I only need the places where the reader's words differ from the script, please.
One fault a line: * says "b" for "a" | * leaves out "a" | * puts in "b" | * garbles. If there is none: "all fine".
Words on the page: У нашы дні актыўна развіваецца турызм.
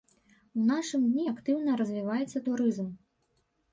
all fine